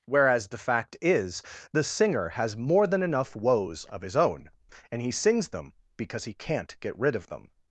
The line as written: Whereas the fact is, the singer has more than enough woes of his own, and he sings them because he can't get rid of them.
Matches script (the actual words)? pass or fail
pass